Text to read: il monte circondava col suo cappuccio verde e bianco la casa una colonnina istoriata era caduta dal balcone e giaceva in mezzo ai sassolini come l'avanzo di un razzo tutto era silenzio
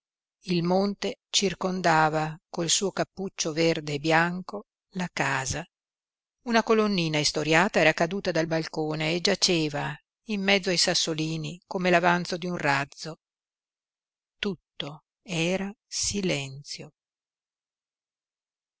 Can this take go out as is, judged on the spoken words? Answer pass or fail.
pass